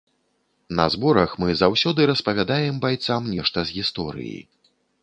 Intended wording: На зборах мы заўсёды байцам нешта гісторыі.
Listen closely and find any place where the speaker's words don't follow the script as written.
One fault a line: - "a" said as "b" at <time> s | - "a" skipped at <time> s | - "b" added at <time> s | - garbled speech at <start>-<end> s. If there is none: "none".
- "распавядаем" added at 2.1 s
- "з" added at 3.7 s